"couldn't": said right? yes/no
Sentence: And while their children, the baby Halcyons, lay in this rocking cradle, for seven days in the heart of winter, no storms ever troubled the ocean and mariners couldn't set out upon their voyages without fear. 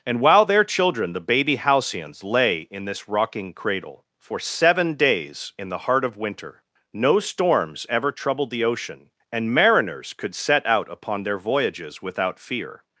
no